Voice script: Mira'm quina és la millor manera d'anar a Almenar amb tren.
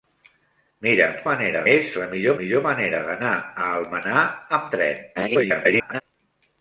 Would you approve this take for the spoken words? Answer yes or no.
no